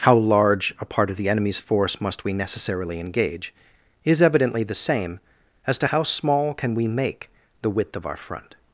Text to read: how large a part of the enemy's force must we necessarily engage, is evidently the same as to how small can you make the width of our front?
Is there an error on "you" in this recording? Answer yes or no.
yes